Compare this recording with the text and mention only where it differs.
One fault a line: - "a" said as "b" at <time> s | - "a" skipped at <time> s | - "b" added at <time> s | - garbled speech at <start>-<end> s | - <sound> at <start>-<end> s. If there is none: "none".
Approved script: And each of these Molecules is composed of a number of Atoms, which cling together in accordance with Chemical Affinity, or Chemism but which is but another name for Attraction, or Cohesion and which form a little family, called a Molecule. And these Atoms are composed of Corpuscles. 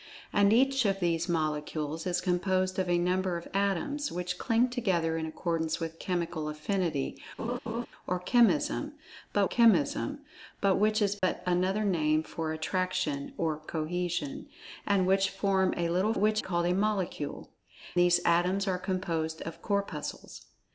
- laugh at 7.4-7.9 s
- "Chemism but" added at 9.4 s
- dropout at 11.2-11.2 s
- "family" said as "which" at 16.2 s
- "And" skipped at 17.5 s